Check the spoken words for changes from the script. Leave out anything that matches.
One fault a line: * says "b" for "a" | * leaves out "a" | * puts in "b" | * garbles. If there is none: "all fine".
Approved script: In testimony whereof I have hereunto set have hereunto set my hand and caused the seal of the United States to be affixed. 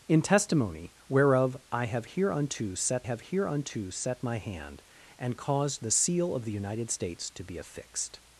all fine